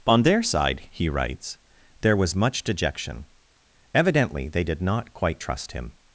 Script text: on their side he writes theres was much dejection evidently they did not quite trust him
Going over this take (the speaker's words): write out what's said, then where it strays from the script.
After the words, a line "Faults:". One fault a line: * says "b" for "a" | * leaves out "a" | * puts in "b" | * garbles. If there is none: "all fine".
on their side he writes there was much dejection evidently they did not quite trust him
Faults:
* says "there" for "theres"